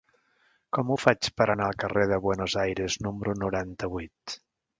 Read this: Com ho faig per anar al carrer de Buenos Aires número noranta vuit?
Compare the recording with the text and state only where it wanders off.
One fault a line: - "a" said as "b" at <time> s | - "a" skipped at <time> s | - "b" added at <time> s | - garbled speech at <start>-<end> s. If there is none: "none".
none